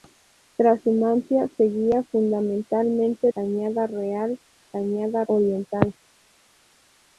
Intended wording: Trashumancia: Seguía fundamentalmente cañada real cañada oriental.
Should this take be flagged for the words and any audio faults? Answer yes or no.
no